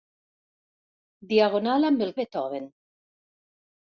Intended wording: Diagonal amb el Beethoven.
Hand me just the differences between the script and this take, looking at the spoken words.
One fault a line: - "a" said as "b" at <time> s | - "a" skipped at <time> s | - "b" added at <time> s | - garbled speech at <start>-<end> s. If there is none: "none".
none